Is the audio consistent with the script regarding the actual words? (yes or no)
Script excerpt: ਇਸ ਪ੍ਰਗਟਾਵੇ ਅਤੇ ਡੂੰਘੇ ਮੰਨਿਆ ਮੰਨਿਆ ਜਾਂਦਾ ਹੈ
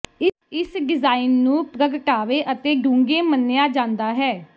no